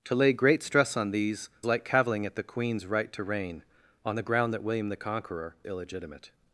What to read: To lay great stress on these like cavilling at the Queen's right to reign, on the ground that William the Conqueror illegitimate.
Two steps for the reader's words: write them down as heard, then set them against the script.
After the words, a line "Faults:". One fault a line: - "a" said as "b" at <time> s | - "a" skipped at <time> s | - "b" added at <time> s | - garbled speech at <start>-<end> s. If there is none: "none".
To lay great stress on these like cavilling at the Queen's right to reign, on the ground that William the Conqueror illegitimate.
Faults:
none